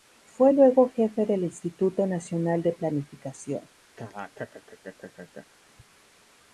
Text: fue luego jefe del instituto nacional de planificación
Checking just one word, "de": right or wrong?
right